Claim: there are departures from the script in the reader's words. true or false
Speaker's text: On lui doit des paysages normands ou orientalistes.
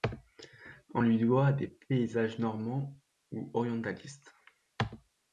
false